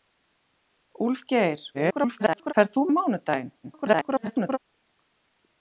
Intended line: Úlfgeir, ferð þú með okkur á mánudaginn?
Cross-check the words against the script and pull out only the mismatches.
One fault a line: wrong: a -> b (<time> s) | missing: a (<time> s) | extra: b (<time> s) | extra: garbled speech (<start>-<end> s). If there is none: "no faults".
extra: garbled speech (1.7-2.5 s)
missing: með okkur (2.8 s)
extra: garbled speech (3.6-4.6 s)